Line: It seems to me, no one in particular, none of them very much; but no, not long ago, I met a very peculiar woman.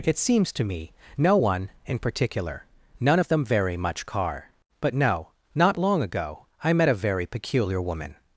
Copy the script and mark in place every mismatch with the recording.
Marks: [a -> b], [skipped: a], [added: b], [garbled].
It seems to me, no one in particular, none of them very much; [added: car] but no, not long ago, I met a very peculiar woman.